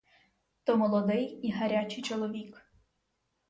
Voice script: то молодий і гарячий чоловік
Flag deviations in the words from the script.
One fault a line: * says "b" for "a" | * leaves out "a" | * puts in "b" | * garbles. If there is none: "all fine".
all fine